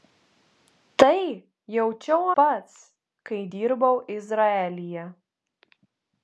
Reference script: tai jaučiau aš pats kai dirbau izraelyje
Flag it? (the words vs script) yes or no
yes